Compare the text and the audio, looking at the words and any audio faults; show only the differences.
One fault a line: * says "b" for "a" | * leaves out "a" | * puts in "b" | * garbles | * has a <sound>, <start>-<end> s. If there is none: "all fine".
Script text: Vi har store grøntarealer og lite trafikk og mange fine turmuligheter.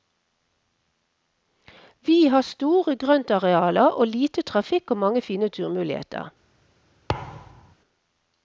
* has a thud, 7.1-7.7 s